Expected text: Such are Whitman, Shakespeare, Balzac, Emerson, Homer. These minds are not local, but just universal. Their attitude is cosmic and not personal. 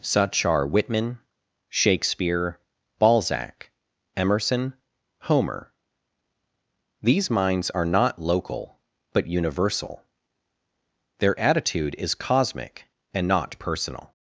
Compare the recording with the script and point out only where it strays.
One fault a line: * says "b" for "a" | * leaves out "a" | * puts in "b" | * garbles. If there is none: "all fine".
* leaves out "just"